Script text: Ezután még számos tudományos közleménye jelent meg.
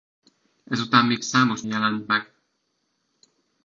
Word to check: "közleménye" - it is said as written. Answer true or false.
false